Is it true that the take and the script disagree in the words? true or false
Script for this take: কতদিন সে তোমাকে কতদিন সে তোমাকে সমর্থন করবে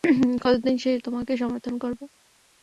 true